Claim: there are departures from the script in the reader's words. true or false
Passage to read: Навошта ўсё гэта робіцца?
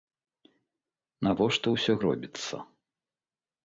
true